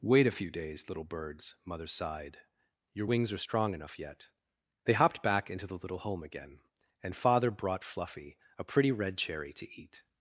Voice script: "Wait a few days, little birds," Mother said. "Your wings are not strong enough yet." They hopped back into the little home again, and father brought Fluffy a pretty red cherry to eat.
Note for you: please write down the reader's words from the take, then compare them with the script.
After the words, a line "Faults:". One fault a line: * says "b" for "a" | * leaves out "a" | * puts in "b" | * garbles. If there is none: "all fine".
"Wait a few days, little birds," Mother sighed. "Your wings are strong enough yet." They hopped back into the little home again, and father brought Fluffy a pretty red cherry to eat.
Faults:
* says "sighed" for "said"
* leaves out "not"